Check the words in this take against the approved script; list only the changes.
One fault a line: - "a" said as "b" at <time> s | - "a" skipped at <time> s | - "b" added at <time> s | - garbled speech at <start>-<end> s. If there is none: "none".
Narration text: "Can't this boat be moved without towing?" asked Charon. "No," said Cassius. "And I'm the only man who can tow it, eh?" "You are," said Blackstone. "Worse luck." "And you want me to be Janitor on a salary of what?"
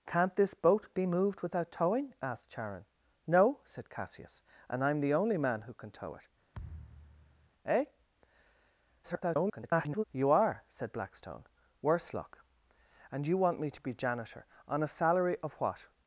- garbled speech at 9.0-10.0 s